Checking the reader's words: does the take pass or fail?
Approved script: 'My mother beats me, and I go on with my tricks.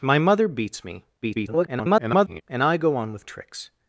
fail